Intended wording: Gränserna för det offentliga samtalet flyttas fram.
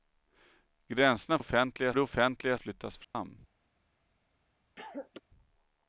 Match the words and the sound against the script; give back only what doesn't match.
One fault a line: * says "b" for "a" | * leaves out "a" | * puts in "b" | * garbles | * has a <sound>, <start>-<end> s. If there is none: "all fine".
* says "offentliga" for "för"
* leaves out "samtalet"
* has a dropout, 3.0-3.1 s
* has a cough, 4.8-5.2 s